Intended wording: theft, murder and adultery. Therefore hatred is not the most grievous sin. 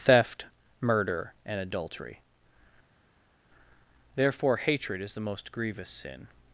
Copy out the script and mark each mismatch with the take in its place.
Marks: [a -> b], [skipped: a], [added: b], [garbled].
theft, murder and adultery. Therefore hatred is [skipped: not] the most grievous sin.